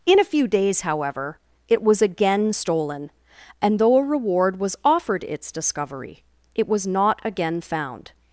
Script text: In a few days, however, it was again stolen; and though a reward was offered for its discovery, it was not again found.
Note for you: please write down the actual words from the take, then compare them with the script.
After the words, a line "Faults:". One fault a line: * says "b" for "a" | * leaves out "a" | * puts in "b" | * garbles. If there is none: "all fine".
In a few days, however, it was again stolen; and though a reward was offered its discovery, it was not again found.
Faults:
* leaves out "for"